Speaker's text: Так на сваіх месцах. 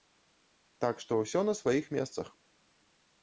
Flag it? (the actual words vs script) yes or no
yes